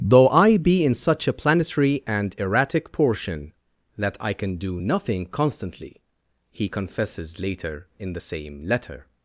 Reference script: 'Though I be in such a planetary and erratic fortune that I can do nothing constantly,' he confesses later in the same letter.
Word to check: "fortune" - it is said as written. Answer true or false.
false